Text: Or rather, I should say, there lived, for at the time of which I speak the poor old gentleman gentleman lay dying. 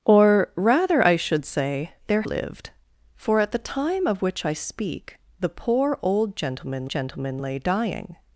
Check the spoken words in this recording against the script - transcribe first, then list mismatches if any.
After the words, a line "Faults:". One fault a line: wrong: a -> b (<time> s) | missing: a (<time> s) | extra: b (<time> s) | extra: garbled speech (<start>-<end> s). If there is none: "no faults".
Or rather, I should say, there lived, for at the time of which I speak the poor old gentleman gentleman lay dying.
Faults:
no faults